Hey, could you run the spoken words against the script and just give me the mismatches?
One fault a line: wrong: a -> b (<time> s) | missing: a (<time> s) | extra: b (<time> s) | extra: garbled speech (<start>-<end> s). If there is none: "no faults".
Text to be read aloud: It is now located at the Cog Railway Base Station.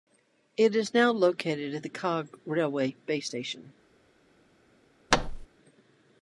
no faults